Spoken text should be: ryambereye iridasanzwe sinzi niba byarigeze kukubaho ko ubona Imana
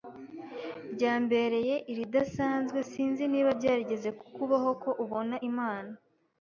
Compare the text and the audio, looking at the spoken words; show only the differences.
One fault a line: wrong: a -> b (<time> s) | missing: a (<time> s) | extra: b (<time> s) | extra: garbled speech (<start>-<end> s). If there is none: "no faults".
no faults